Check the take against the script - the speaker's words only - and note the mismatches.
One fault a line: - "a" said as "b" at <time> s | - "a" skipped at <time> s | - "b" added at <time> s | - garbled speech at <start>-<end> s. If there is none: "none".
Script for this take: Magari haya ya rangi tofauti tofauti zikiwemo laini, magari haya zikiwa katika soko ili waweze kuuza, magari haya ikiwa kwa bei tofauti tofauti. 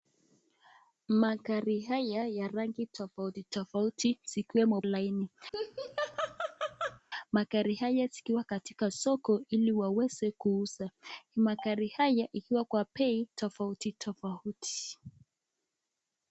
none